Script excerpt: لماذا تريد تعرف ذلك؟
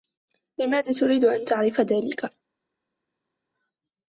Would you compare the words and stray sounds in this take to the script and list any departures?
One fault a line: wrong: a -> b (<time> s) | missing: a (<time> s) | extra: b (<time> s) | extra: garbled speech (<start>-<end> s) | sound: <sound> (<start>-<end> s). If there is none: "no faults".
extra: أن (1.2 s)